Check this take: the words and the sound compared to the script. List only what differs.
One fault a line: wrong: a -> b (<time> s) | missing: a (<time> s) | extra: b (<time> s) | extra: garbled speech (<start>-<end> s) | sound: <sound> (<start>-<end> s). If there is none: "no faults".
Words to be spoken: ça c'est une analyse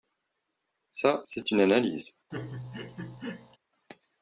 sound: laugh (2.3-3.6 s)